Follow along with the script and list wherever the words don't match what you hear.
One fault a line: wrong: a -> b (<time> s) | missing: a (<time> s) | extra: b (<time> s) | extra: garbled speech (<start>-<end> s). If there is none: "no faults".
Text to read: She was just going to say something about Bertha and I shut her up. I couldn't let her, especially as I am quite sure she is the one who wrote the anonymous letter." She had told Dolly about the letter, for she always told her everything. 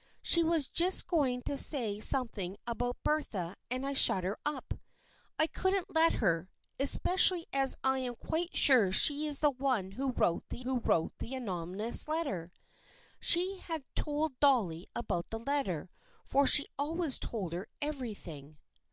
extra: who wrote the (10.6 s)